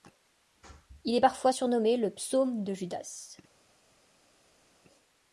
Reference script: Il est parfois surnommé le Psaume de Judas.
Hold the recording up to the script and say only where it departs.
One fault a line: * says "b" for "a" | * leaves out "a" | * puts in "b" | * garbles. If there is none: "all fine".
all fine